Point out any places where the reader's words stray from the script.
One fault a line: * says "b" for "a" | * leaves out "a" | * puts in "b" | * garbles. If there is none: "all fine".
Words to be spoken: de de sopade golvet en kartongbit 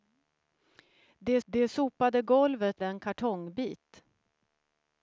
all fine